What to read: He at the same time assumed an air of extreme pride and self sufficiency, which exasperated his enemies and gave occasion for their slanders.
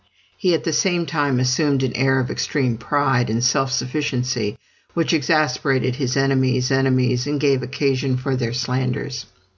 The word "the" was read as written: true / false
true